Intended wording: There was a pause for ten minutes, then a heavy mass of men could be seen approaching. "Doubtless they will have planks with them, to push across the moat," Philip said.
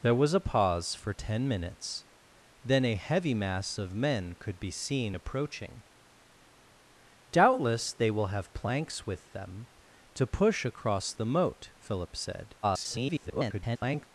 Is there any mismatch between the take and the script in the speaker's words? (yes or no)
yes